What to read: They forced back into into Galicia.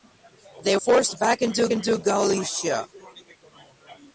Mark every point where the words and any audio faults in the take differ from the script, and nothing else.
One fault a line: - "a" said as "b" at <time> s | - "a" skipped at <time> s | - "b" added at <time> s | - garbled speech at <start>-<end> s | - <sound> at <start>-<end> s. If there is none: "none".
none